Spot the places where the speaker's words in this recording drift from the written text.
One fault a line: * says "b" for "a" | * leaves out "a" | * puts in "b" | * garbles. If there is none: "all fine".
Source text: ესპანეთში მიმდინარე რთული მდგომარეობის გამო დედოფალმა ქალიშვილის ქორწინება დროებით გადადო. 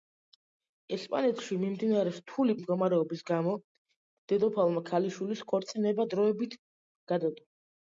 all fine